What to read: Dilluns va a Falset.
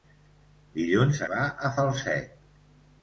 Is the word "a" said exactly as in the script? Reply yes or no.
yes